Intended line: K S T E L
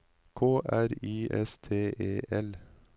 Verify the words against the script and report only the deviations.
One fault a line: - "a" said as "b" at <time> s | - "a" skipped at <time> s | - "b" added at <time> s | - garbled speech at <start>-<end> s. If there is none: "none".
- "R I" added at 0.7 s